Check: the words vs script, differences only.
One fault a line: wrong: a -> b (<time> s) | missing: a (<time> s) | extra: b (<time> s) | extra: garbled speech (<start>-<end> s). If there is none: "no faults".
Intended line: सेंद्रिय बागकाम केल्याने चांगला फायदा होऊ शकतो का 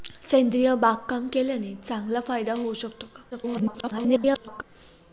extra: garbled speech (3.3-4.6 s)